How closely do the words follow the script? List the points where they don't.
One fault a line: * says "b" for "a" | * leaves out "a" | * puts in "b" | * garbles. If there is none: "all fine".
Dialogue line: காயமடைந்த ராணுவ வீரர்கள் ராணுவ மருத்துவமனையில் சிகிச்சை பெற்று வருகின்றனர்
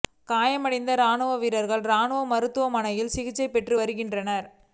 all fine